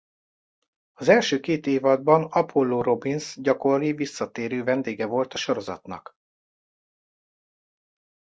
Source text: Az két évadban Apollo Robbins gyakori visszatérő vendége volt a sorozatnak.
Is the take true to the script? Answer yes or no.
no